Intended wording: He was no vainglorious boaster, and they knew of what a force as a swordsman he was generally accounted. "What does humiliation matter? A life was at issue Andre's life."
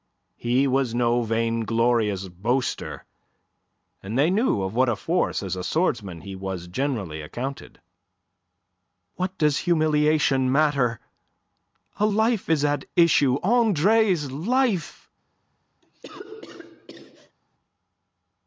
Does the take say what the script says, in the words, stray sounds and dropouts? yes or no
no